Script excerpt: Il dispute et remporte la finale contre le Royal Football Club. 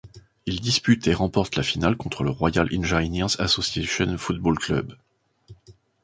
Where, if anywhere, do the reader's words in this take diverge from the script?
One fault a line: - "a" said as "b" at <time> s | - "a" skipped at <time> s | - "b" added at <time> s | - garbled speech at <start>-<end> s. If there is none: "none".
- "Engineers Association" added at 2.8 s